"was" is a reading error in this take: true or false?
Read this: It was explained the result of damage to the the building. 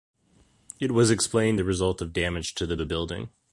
false